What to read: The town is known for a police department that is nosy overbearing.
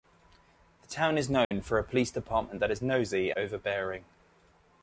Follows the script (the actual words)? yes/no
yes